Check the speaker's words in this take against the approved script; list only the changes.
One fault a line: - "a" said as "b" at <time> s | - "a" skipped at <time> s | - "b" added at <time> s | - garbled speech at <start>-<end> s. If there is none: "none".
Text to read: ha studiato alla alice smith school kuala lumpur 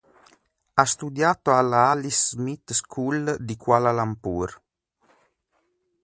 - "di" added at 3.4 s